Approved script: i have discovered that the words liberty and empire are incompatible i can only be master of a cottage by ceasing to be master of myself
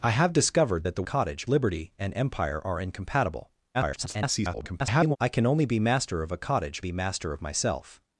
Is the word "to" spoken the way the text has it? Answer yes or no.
no